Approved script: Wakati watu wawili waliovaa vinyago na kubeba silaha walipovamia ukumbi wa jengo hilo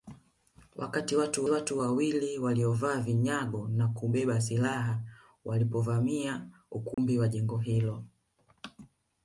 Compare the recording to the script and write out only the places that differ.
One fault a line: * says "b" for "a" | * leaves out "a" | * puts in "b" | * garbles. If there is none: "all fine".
* puts in "watu"